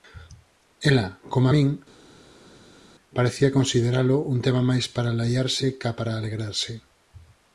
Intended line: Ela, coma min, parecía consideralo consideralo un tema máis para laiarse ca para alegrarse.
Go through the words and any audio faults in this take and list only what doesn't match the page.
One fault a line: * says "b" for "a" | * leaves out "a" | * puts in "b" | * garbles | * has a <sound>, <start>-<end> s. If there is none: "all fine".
* leaves out "consideralo"